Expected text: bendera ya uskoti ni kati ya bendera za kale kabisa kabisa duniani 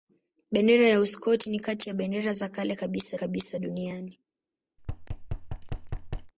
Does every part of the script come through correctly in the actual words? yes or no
yes